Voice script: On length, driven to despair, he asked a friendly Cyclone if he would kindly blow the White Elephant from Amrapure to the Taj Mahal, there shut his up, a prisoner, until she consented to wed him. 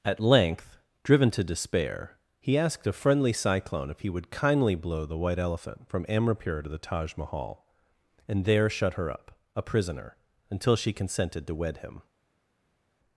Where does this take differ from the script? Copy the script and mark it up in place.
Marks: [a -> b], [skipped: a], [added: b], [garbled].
[On -> At] length, driven to despair, he asked a friendly Cyclone if he would kindly blow the White Elephant from Amrapure to the Taj Mahal, [added: and] there shut [his -> her] up, a prisoner, until she consented to wed him.